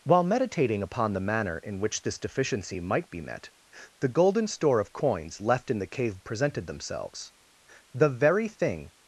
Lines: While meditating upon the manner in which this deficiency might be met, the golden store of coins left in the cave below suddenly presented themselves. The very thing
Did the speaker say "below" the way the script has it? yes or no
no